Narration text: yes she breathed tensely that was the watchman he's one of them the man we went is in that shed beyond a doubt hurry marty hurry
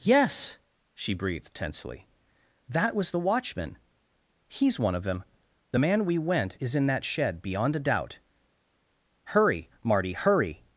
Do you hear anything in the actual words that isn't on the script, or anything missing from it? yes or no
no